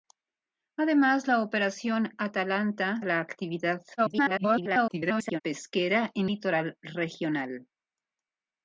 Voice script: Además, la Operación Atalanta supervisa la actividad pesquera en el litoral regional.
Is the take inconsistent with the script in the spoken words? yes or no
yes